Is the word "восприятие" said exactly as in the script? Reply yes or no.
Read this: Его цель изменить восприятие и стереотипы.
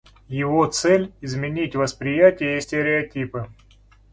yes